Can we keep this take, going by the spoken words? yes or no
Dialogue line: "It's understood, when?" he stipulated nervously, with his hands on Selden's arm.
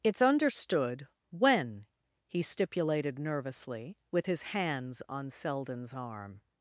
yes